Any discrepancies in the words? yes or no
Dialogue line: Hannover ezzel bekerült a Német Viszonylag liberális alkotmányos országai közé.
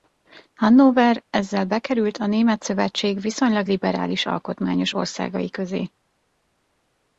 yes